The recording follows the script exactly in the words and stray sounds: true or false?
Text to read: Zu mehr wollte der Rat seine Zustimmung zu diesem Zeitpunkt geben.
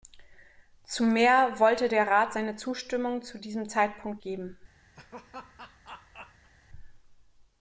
false